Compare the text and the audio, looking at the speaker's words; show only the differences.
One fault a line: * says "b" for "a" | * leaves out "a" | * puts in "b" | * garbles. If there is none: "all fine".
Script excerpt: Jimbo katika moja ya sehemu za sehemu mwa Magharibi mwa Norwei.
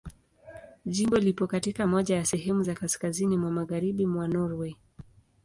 * puts in "lipo"
* says "kaskazini" for "sehemu"